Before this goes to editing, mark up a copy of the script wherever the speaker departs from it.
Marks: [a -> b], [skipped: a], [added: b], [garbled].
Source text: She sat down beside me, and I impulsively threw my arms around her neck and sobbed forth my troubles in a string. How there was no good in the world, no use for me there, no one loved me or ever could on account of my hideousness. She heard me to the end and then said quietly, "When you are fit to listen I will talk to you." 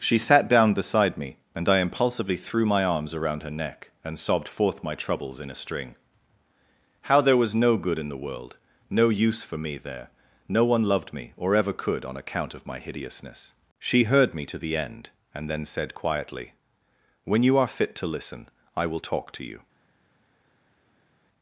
She sat down beside me, and I impulsively threw my arms around her neck and sobbed forth my troubles in a string. How there was no good in the world, no use for me there, no one loved me or ever could on account of my hideousness. She heard me to the end and then said quietly, "When you are fit to listen I will talk to you."